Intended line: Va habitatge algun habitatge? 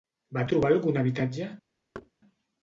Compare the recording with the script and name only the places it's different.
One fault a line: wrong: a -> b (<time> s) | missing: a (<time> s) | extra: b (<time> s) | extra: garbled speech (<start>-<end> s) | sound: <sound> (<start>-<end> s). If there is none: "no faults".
wrong: habitatge -> trobar (0.5 s)
sound: thud (1.9-2.1 s)